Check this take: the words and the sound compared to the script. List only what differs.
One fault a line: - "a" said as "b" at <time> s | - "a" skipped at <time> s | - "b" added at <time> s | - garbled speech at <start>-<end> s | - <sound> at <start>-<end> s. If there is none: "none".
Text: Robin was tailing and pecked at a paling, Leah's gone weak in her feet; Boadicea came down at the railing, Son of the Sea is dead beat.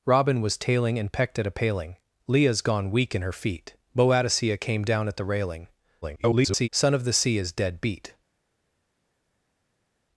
- garbled speech at 6.0-6.7 s